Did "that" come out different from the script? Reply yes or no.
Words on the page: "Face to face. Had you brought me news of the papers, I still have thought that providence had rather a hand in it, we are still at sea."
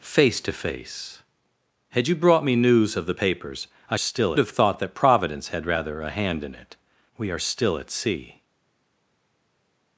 no